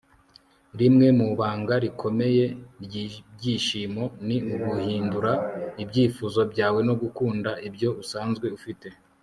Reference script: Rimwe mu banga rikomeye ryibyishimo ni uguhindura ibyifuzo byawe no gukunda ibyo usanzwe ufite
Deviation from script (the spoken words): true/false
false